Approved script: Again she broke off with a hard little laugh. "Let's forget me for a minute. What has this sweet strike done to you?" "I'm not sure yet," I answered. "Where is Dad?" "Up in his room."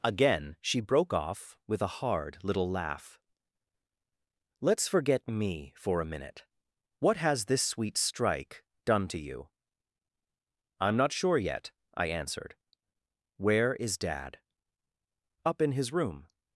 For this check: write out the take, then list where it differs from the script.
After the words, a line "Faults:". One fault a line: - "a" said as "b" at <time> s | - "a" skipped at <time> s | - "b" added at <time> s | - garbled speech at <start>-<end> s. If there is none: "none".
Again she broke off with a hard little laugh. "Let's forget me for a minute. What has this sweet strike done to you?" "I'm not sure yet," I answered. "Where is Dad?" "Up in his room."
Faults:
none